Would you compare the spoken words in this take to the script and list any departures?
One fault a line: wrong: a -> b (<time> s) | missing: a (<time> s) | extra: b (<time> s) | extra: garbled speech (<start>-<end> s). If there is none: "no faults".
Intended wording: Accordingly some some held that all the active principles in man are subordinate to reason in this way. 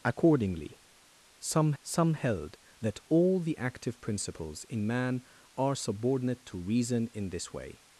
no faults